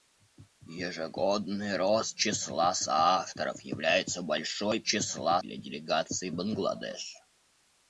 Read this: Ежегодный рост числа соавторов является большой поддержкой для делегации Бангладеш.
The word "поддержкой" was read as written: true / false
false